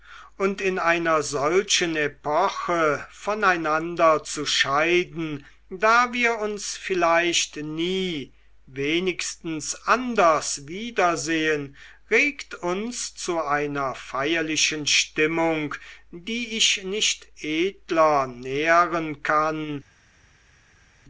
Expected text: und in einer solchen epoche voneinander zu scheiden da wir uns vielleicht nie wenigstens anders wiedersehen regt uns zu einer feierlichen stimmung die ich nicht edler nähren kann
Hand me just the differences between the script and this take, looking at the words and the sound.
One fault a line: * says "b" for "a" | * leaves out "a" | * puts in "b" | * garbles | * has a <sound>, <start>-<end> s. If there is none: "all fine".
all fine